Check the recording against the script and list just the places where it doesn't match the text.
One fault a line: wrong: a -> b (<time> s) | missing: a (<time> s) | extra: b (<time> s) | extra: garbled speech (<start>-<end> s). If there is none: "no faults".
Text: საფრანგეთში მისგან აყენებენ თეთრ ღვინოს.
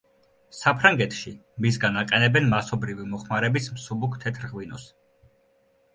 extra: მასობრივი მოხმარების მსუბუქ (2.6 s)